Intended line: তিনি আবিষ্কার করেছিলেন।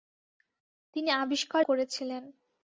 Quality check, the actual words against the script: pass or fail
pass